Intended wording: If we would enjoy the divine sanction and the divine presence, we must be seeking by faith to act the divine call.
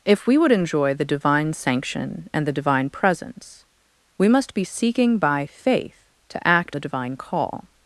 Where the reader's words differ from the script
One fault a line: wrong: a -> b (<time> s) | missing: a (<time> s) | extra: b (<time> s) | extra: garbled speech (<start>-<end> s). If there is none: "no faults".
no faults